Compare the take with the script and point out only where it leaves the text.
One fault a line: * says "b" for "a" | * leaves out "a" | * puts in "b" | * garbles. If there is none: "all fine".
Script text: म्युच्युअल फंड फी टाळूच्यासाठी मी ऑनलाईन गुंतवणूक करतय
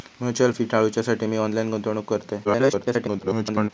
* leaves out "फंड"
* garbles